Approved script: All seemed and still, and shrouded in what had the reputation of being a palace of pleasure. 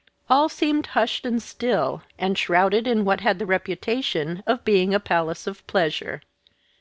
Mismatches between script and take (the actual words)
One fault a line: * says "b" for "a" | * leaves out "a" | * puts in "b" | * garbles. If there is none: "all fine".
* puts in "hushed"